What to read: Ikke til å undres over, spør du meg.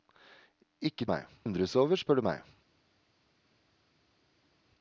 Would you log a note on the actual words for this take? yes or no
yes